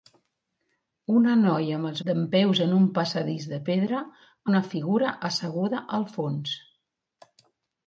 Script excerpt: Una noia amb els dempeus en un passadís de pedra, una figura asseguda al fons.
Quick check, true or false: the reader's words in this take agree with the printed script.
true